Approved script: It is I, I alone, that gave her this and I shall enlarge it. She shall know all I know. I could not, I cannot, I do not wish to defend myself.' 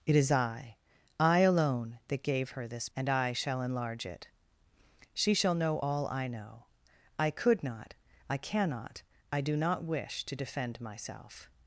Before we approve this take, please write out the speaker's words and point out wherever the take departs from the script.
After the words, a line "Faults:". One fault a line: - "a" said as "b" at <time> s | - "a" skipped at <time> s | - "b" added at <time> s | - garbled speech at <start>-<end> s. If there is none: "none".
It is I, I alone, that gave her this and I shall enlarge it. She shall know all I know. I could not, I cannot, I do not wish to defend myself.'
Faults:
none